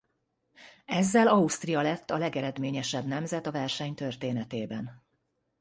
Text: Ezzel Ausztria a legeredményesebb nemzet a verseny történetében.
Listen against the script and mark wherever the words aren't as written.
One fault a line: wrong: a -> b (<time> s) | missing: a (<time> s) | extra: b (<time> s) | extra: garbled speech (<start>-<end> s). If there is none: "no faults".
extra: lett (1.8 s)